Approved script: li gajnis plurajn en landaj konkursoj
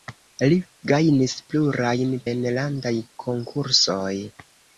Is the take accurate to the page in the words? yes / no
yes